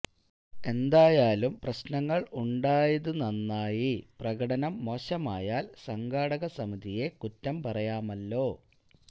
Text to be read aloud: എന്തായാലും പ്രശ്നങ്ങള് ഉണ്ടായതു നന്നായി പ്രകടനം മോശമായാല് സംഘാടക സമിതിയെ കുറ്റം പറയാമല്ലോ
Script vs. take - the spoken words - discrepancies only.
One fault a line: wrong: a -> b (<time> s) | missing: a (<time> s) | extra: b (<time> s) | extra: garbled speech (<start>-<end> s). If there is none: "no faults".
no faults